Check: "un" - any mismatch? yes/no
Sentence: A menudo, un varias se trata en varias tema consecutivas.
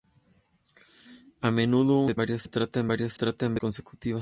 no